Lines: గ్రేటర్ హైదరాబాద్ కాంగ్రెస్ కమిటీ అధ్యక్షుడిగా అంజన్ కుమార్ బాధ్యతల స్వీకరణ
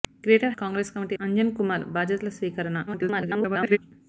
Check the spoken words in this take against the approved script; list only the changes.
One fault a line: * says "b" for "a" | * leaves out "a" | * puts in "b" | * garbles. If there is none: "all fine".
* leaves out "హైదరాబాద్"
* leaves out "అధ్యక్షుడిగా"
* garbles